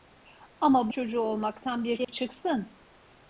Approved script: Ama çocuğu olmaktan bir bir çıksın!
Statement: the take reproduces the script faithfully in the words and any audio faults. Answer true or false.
false